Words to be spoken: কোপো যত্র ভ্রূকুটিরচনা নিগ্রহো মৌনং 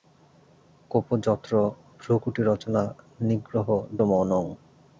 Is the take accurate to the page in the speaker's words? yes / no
yes